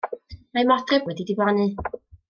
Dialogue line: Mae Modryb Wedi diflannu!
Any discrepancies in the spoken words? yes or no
no